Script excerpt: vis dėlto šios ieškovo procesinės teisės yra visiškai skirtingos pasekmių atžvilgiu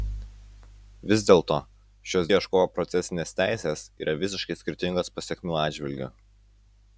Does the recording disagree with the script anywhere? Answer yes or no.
no